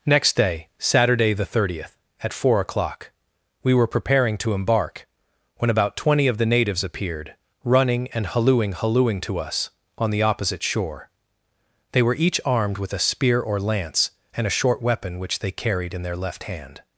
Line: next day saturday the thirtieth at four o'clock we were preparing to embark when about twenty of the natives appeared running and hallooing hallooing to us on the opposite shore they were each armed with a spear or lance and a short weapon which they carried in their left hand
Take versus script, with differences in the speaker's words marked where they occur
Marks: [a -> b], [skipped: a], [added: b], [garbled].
next day saturday the thirtieth at four o'clock we were preparing to embark when about twenty of the natives appeared running and hallooing hallooing to us on the opposite shore they were each armed with a spear or lance and a short weapon which they carried in their left hand